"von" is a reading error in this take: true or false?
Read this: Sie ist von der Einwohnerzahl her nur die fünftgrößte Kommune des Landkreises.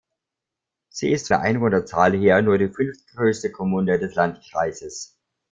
true